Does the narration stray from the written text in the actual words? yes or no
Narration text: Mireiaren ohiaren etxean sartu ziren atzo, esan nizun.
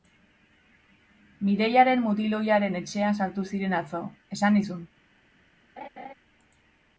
yes